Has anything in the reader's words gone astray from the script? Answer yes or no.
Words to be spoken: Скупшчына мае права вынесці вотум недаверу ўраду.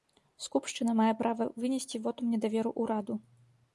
no